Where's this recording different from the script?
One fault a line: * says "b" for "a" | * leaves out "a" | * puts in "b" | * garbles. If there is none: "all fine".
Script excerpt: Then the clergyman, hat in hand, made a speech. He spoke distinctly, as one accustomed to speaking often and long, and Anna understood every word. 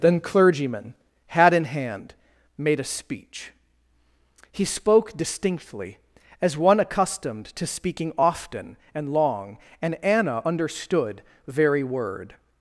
* leaves out "the"
* says "very" for "every"